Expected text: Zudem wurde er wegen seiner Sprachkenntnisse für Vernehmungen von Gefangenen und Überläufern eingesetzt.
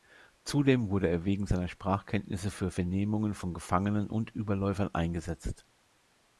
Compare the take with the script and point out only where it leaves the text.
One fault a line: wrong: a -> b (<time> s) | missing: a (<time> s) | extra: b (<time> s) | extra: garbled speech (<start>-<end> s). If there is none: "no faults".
no faults